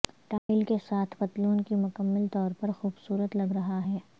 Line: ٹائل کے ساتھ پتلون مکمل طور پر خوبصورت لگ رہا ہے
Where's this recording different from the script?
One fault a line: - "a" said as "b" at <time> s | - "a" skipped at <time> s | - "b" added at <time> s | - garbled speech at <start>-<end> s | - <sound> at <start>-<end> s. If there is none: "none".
- dropout at 0.4-0.5 s
- "کی" added at 1.6 s